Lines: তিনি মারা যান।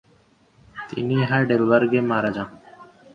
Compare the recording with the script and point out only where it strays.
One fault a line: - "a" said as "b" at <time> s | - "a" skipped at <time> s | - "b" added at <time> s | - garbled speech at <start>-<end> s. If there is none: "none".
- "হাইডেলবার্গে" added at 1.3 s